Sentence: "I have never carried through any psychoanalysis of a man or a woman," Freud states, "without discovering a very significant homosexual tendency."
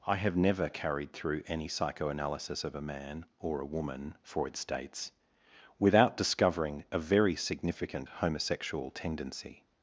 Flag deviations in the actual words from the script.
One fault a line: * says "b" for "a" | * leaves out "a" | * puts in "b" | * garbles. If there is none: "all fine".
all fine